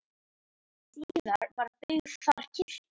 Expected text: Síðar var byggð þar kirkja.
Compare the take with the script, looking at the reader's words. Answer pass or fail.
pass